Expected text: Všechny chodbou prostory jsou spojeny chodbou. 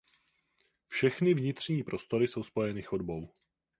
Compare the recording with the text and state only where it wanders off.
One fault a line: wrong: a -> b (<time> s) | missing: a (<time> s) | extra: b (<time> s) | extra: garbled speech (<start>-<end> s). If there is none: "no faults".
wrong: chodbou -> vnitřní (1.3 s)